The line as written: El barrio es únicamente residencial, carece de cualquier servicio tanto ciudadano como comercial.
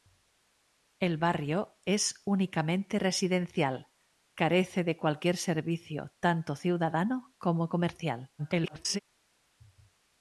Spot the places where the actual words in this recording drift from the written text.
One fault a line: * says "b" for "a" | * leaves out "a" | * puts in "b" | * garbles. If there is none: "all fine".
* garbles